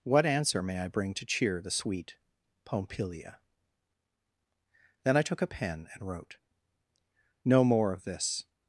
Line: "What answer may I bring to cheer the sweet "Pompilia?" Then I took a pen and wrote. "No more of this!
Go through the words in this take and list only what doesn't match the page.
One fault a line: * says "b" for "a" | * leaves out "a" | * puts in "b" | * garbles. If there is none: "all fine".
all fine